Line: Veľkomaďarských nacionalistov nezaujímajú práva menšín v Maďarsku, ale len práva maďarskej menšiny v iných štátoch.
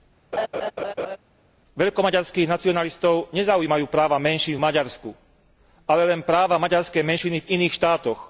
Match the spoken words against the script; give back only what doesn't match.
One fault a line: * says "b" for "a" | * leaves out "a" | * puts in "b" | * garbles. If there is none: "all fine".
all fine